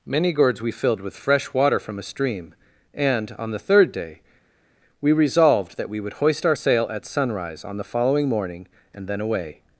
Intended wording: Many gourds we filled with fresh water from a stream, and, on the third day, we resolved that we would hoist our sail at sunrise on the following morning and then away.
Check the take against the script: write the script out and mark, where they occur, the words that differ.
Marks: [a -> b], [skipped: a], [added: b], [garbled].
Many gourds we filled with fresh water from a stream, and, on the third day, we resolved that we would hoist our sail at sunrise on the following morning and then away.